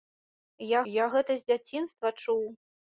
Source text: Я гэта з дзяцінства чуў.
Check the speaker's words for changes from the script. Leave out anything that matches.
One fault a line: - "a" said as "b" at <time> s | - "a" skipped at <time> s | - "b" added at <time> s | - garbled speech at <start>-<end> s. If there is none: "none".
- "я" added at 0.9 s